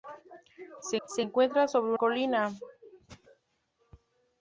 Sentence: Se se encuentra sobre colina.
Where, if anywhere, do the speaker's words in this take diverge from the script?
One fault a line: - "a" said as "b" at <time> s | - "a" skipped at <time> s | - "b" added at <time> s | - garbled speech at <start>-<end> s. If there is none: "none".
none